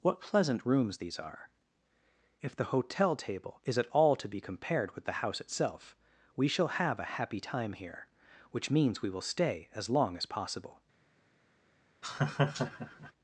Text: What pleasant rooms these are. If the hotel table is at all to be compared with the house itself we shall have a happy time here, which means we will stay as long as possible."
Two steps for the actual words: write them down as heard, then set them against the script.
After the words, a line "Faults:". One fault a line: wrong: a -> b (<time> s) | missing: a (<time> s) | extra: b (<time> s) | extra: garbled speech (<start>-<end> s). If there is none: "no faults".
What pleasant rooms these are. If the hotel table is at all to be compared with the house itself we shall have a happy time here, which means we will stay as long as possible."
Faults:
no faults